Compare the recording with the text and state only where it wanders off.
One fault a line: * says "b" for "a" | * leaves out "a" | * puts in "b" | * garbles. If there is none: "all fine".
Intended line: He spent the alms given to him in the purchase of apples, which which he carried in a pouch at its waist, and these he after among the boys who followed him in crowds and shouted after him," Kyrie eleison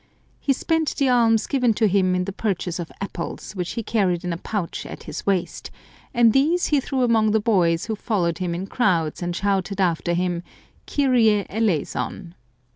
* leaves out "which"
* says "his" for "its"
* says "threw" for "after"